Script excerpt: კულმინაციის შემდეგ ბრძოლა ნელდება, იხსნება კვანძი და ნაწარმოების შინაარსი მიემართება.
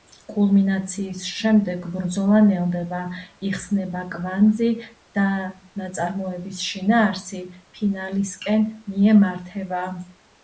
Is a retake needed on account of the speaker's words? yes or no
yes